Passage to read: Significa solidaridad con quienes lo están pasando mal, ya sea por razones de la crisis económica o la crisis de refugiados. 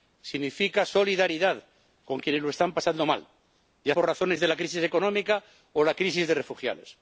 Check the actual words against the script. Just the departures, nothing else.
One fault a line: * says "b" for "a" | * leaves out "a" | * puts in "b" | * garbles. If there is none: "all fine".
* leaves out "sea"